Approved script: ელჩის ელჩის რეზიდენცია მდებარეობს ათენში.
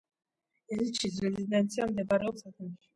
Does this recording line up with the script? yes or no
no